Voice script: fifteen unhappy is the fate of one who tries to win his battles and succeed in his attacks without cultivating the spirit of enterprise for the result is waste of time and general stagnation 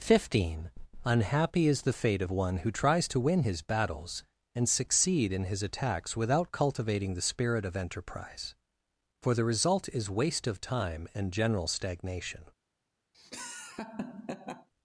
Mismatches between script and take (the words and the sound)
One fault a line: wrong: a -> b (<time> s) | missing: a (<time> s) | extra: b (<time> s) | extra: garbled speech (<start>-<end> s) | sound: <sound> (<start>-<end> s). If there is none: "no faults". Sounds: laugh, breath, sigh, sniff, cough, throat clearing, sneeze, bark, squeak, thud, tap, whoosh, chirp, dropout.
sound: laugh (13.1-14.7 s)